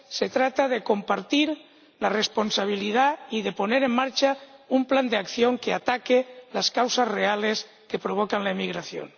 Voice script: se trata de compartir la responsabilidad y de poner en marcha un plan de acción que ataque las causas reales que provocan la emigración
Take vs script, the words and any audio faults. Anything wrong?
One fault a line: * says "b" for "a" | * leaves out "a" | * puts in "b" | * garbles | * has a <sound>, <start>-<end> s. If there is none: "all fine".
all fine